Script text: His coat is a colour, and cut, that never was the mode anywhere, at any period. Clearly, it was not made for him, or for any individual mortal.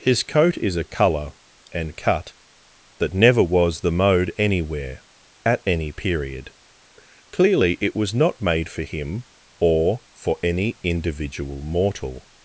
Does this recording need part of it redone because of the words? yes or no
no